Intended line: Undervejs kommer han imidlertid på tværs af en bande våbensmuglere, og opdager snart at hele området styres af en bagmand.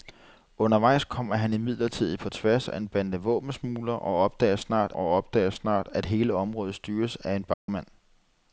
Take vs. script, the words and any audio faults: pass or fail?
fail